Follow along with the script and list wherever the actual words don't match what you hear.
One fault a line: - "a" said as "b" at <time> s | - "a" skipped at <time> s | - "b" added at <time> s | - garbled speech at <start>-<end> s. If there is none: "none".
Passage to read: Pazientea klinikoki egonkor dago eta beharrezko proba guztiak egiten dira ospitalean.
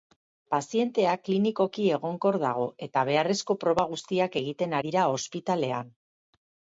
none